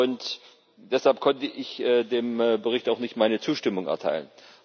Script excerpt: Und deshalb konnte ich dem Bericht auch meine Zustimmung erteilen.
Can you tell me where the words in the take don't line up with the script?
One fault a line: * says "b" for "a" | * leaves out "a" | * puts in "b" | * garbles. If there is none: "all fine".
* puts in "nicht"